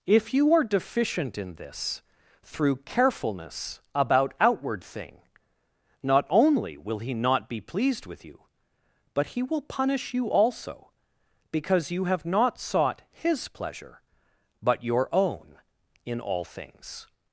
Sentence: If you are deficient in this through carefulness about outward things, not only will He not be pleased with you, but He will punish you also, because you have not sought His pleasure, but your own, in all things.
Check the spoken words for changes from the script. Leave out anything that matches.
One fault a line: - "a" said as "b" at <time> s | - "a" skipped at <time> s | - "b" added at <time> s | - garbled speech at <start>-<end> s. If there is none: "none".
- "things" said as "thing" at 4.8 s